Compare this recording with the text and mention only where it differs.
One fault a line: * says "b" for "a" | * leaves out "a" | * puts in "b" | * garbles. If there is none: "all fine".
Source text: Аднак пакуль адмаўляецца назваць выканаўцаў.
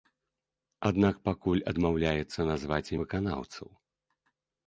all fine